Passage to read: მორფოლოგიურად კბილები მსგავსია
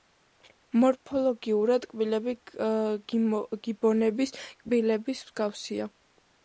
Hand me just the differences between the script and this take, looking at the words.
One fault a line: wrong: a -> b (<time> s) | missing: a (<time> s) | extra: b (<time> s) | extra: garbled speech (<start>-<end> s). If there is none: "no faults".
extra: გიბონების კბილების (3.7 s)